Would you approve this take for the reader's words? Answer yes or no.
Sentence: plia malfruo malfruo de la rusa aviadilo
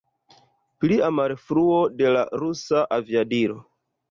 no